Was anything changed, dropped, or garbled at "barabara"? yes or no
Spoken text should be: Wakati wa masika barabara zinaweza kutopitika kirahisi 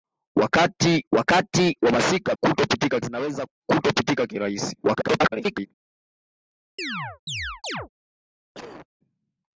yes